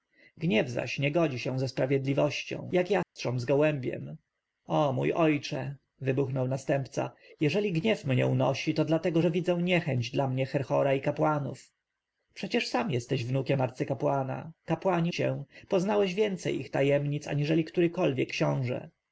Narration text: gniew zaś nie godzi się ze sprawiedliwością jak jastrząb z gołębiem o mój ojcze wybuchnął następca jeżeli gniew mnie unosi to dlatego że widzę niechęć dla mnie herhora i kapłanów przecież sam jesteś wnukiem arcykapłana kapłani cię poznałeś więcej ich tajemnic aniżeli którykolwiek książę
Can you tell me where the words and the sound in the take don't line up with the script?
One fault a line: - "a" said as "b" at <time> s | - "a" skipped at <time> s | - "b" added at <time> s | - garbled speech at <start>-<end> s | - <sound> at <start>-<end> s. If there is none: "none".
- dropout at 3.0-3.2 s